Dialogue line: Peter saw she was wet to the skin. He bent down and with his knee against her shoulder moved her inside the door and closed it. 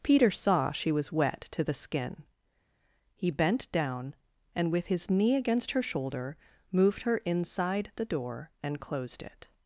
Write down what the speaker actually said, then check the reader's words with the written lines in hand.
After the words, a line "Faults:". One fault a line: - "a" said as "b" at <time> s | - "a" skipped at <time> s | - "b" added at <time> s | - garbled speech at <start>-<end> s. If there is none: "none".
Peter saw she was wet to the skin. He bent down and with his knee against her shoulder moved her inside the door and closed it.
Faults:
none